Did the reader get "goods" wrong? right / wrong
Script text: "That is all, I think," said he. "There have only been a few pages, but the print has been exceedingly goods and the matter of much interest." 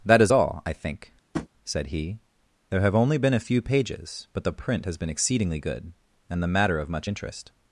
wrong